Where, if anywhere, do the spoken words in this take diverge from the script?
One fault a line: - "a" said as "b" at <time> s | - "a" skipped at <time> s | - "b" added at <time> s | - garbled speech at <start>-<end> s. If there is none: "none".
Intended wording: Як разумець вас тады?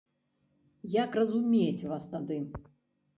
none